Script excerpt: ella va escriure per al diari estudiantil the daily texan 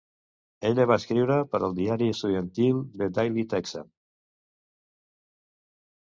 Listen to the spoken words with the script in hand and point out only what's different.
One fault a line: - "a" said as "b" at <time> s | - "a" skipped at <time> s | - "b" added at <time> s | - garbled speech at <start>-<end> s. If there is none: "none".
none